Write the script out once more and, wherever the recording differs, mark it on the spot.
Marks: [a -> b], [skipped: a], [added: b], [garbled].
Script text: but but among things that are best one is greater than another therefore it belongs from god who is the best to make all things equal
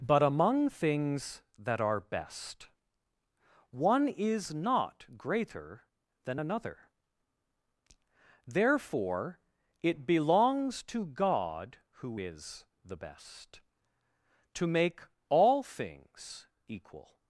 but [skipped: but] among things that are best one is [added: not] greater than another therefore it belongs [from -> to] god who is the best to make all things equal